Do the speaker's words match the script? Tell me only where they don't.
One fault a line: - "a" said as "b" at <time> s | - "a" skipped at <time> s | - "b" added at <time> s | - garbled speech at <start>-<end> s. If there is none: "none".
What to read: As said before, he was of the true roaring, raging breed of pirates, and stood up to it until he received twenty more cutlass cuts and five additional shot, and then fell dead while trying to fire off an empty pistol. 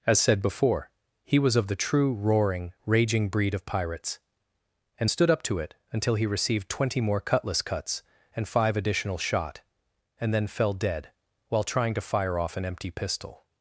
none